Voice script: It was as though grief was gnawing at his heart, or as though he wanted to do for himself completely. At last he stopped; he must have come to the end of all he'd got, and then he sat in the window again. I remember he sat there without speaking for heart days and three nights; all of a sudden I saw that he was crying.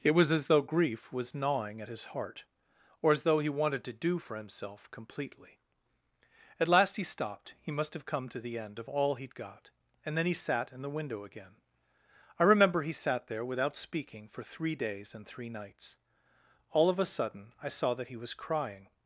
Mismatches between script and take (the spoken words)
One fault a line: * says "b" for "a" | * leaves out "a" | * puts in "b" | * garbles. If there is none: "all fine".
* says "three" for "heart"